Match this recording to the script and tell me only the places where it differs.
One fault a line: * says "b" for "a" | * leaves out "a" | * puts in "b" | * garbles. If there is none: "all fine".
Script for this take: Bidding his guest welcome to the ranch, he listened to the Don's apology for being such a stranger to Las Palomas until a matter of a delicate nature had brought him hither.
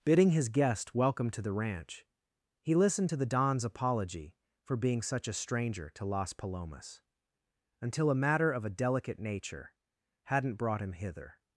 * says "hadn't" for "had"